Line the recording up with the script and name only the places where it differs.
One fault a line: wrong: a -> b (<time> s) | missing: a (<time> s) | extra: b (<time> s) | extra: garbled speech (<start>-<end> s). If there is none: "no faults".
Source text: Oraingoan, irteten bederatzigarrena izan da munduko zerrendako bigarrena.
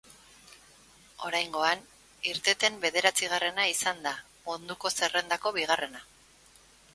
no faults